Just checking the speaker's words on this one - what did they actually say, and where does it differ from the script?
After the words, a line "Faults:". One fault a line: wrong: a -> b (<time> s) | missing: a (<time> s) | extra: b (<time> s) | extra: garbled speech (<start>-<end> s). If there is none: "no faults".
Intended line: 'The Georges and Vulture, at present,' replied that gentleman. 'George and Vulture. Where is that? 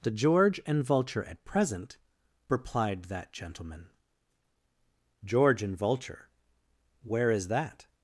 'The George and Vulture, at present,' replied that gentleman. 'George and Vulture. Where is that?
Faults:
wrong: Georges -> George (0.1 s)